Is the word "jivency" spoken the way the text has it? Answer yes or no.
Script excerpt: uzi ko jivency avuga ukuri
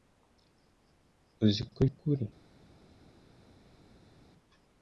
no